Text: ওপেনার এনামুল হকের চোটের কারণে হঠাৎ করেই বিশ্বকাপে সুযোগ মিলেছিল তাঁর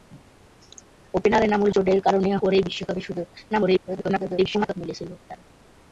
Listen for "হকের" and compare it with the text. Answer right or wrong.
wrong